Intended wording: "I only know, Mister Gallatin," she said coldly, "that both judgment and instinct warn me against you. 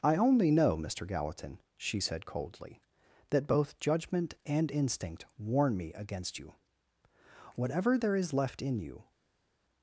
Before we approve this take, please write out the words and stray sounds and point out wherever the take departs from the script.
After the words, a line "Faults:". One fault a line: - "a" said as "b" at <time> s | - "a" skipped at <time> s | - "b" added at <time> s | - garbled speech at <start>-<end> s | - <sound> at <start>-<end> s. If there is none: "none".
"I only know, Mister Gallatin," she said coldly, "that both judgment and instinct warn me against you. Whatever there is left in you
Faults:
- "Whatever there is left in you" added at 7.5 s